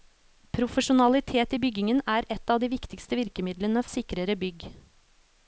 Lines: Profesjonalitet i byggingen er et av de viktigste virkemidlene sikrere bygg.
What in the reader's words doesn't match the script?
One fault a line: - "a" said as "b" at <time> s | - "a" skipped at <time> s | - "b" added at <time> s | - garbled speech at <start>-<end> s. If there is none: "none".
none